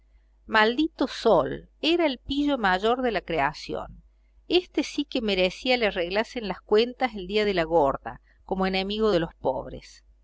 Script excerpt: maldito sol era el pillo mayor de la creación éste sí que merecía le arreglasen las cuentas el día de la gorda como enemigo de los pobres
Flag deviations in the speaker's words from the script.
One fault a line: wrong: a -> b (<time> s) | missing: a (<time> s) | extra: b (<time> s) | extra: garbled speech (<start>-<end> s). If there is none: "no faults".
no faults